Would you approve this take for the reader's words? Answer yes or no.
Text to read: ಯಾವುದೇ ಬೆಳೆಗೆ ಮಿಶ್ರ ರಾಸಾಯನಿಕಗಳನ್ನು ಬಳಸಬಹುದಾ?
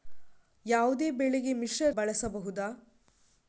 no